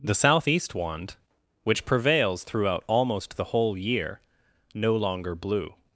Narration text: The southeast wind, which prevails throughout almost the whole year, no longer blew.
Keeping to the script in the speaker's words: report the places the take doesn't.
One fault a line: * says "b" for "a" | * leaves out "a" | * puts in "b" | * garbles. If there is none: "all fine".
* says "wand" for "wind"